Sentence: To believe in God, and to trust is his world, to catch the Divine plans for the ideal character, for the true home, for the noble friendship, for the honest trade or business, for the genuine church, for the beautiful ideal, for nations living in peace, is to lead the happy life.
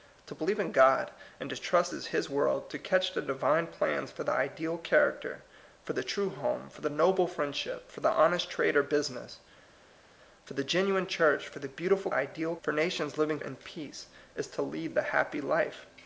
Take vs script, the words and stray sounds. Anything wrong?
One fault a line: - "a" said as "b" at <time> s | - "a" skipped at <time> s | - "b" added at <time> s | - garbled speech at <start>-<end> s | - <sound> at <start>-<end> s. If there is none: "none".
none